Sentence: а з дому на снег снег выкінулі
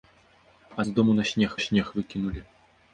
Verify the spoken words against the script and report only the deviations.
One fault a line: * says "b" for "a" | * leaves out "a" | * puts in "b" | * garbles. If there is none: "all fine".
all fine